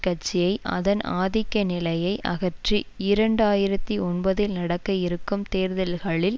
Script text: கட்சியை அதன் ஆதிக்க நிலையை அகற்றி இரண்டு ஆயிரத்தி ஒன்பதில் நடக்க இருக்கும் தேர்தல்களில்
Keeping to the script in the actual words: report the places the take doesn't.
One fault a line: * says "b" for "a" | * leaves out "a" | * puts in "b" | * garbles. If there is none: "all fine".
all fine